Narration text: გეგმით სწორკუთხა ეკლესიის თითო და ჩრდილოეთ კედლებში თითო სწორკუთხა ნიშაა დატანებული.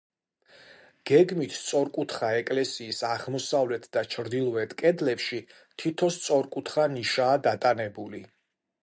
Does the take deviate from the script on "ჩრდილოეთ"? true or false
false